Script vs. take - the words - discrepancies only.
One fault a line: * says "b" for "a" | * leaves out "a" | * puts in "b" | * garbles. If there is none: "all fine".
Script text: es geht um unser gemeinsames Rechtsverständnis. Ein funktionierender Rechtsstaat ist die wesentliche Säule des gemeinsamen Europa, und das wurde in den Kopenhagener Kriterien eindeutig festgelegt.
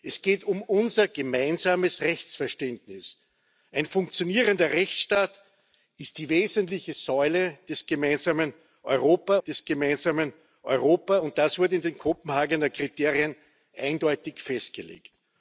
* puts in "des gemeinsamen Europa"